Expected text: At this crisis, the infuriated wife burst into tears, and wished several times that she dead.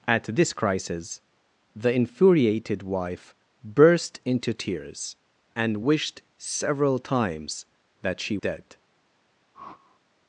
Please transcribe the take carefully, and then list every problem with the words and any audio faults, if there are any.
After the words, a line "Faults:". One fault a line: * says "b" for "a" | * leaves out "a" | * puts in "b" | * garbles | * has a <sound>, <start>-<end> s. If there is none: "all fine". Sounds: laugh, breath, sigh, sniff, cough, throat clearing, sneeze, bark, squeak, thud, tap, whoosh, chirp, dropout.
At this crisis, the infuriated wife burst into tears, and wished several times that she dead.
Faults:
* has a whoosh, 9.5-10.0 s